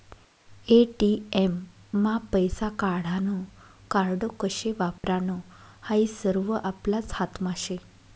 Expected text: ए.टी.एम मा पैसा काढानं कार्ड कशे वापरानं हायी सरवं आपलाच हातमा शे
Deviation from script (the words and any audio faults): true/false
true